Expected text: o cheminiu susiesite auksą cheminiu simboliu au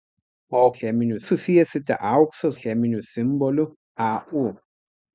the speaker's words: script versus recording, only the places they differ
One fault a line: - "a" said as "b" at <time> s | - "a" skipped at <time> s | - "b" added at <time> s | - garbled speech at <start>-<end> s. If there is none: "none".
none